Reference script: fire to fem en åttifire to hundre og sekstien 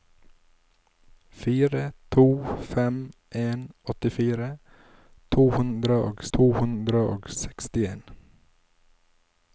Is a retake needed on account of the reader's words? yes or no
yes